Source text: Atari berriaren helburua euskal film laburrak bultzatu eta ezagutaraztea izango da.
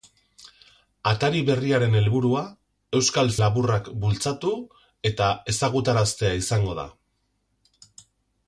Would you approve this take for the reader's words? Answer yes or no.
no